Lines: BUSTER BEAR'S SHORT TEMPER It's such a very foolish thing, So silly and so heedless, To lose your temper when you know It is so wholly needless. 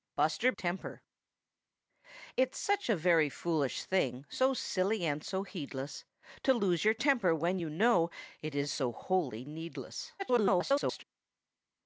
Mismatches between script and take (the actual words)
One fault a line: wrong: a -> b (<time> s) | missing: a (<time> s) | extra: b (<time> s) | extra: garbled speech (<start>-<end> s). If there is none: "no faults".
missing: BEAR'S SHORT (0.5 s)
extra: garbled speech (10.2-11.0 s)